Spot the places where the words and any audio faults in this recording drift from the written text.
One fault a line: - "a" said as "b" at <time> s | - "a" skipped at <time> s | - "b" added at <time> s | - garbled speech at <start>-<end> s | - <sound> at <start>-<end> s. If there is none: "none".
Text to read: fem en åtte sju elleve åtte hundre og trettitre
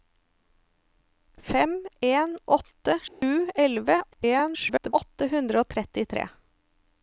- dropout at 3.1-3.2 s
- garbled speech at 4.1-4.9 s